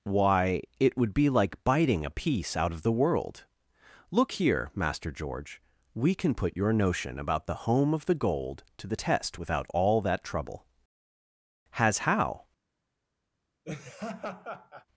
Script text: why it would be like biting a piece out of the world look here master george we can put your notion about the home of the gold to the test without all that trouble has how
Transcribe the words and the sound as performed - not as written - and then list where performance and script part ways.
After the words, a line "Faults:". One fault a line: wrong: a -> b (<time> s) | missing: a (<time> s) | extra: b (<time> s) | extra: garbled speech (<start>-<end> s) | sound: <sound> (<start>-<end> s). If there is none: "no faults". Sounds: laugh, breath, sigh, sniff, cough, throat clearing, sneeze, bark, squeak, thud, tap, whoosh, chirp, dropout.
why it would be like biting a piece out of the world look here master george we can put your notion about the home of the gold to the test without all that trouble has how
Faults:
sound: laugh (13.6-14.9 s)